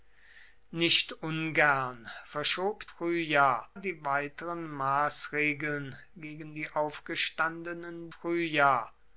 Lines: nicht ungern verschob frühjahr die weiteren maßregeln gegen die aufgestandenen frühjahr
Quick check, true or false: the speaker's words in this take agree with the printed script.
true